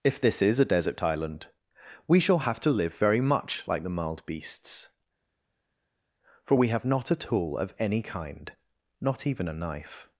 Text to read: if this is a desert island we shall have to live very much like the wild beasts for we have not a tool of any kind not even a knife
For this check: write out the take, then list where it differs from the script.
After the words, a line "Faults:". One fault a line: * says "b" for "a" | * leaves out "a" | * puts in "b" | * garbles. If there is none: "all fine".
if this is a desert island we shall have to live very much like the mild beasts for we have not a tool of any kind not even a knife
Faults:
* says "mild" for "wild"